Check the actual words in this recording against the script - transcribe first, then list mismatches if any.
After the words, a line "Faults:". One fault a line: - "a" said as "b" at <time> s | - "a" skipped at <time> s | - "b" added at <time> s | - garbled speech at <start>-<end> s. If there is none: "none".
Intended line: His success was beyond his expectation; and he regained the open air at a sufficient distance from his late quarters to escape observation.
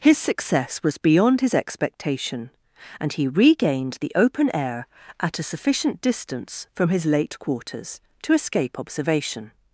His success was beyond his expectation; and he regained the open air at a sufficient distance from his late quarters to escape observation.
Faults:
none